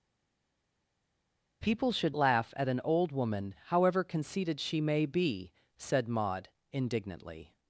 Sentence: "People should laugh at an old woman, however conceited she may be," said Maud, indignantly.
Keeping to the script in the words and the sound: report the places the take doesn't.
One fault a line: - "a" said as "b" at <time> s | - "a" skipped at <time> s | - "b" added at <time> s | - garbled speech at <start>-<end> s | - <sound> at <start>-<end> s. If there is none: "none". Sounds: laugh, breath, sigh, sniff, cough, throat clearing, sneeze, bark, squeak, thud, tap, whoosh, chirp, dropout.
none